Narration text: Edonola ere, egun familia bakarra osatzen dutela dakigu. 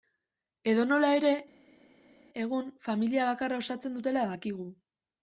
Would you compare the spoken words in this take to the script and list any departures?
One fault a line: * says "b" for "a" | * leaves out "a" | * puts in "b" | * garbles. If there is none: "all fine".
all fine